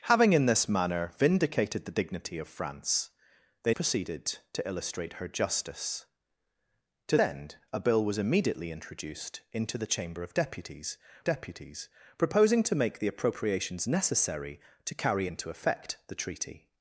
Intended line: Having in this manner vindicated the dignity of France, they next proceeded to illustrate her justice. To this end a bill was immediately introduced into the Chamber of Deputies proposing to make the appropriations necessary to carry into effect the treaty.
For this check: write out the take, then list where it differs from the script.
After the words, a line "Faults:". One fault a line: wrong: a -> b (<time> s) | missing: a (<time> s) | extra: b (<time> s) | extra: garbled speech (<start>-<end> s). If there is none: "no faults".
Having in this manner vindicated the dignity of France, they proceeded to illustrate her justice. To end a bill was immediately introduced into the Chamber of Deputies Deputies proposing to make the appropriations necessary to carry into effect the treaty.
Faults:
missing: next (3.8 s)
missing: this (7.2 s)
extra: Deputies (11.2 s)